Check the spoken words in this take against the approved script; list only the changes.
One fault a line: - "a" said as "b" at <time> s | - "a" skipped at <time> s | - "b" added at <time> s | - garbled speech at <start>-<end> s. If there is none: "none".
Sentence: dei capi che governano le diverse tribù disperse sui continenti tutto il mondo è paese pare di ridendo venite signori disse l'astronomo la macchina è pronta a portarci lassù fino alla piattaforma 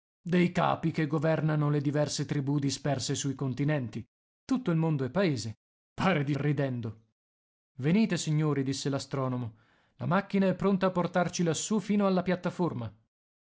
none